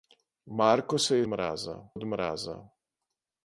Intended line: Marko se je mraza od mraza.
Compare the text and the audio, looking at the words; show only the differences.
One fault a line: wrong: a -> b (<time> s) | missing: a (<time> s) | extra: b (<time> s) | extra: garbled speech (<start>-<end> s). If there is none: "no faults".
no faults